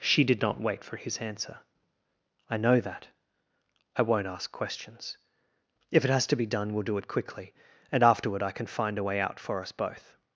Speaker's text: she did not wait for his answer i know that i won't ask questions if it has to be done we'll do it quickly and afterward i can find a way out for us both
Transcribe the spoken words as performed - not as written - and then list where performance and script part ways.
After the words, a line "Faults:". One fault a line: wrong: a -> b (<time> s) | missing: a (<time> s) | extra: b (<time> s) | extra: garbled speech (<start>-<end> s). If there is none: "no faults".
she did not wait for his answer i know that i won't ask questions if it has to be done we'll do it quickly and afterward i can find a way out for us both
Faults:
no faults